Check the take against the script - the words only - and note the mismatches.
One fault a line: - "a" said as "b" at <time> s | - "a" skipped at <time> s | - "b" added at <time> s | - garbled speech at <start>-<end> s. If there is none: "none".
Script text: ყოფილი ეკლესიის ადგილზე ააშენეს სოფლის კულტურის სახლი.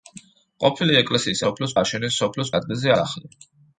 - "ადგილზე" said as "სოფლის" at 1.4 s
- "კულტურის" said as "ადგილზე" at 2.6 s